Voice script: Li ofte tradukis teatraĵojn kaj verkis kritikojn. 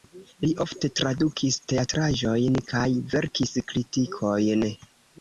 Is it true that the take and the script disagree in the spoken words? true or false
false